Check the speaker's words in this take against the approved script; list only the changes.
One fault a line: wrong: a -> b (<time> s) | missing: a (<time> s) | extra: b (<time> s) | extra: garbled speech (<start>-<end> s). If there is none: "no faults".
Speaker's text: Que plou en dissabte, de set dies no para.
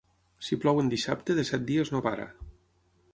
wrong: Que -> Si (0.5 s)